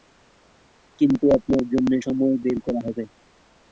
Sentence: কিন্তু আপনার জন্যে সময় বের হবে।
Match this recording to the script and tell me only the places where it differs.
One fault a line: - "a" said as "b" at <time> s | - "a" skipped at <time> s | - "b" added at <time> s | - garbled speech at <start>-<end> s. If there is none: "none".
- "করা" added at 2.6 s